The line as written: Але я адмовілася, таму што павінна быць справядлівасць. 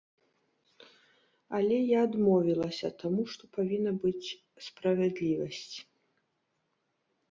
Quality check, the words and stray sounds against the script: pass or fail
pass